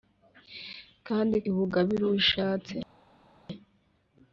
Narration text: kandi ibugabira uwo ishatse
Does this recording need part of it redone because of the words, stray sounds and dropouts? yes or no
no